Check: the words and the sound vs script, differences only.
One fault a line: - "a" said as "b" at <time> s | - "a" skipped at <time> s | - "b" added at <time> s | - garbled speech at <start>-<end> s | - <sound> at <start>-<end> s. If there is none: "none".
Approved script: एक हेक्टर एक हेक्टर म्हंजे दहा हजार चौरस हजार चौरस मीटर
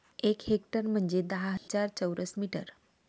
- "एक हेक्टर" skipped at 0.9 s
- dropout at 1.6-1.7 s
- "हजार चौरस" skipped at 2.4 s